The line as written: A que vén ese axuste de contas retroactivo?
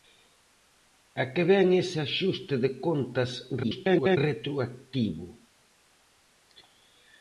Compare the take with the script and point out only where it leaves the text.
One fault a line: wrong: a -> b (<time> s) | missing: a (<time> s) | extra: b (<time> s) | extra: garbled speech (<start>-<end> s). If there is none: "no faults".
extra: garbled speech (3.6-4.2 s)